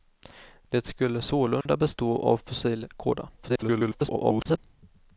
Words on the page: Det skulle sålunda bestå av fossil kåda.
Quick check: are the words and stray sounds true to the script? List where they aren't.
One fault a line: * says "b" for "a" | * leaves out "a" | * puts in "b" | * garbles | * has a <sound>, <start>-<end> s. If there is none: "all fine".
* has a dropout, 1.6-1.7 s
* garbles